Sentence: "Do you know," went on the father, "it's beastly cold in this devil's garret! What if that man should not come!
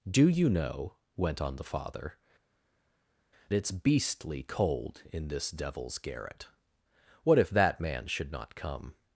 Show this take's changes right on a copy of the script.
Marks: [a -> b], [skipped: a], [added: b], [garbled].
"Do you know," went on the father, "it's beastly cold in this devil's garret! What if that man should not come!